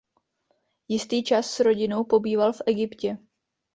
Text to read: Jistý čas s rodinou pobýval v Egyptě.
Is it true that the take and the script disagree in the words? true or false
false